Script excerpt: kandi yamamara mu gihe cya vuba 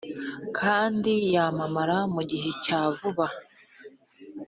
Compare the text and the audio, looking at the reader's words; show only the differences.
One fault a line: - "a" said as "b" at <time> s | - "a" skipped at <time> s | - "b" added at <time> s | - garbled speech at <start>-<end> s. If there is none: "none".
none